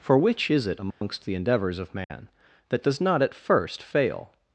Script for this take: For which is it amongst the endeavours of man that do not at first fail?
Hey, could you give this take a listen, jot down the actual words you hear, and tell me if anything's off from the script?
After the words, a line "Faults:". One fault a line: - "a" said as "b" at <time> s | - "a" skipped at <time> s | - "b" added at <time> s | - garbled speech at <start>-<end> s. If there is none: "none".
For which is it amongst the endeavours of man that does not at first fail?
Faults:
- "do" said as "does" at 2.8 s